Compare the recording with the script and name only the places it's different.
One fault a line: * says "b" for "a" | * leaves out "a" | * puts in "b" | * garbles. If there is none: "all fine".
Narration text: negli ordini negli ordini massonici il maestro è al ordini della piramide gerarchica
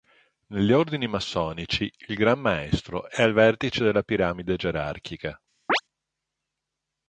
* leaves out "negli ordini"
* puts in "gran"
* says "vertice" for "ordini"